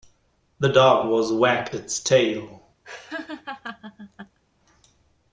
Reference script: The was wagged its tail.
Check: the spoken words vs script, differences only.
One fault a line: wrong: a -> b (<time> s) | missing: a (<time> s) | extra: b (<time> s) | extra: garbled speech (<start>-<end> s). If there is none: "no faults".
extra: dog (0.7 s)